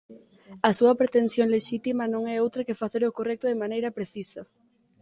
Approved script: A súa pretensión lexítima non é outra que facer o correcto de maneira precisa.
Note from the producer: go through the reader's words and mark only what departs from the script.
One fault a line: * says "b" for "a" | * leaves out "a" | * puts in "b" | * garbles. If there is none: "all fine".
all fine